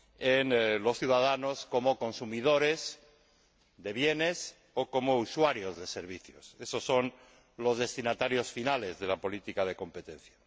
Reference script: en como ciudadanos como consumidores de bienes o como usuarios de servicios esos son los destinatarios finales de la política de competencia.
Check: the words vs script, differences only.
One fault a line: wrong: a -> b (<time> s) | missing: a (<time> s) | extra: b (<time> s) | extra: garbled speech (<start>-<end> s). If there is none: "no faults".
wrong: como -> los (0.8 s)